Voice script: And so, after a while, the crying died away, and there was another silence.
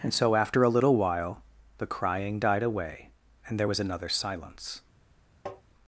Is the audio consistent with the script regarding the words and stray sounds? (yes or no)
no